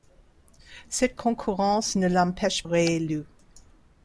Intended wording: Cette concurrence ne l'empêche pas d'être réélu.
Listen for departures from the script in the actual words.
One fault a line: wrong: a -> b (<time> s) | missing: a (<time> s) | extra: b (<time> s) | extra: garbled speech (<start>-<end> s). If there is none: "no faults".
missing: pas d'être (2.6 s)